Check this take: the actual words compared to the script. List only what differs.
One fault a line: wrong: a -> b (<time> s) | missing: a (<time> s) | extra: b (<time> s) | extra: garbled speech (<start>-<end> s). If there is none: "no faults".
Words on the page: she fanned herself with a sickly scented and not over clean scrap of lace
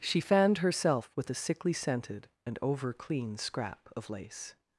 missing: not (2.6 s)